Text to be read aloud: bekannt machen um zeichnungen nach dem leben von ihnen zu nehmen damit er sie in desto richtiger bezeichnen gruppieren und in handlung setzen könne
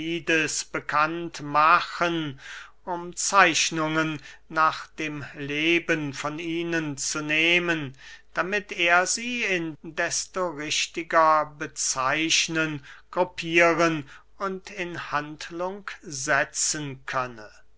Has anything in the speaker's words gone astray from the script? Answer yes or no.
no